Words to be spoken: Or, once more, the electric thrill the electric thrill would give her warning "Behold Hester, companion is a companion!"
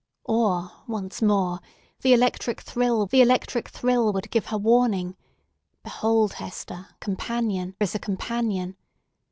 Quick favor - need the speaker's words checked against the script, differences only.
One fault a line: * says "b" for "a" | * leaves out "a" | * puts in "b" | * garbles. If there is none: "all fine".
all fine